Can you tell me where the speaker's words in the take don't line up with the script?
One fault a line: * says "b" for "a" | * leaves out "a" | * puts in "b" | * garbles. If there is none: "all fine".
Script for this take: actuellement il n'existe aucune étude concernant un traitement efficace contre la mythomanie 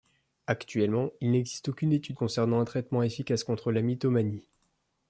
all fine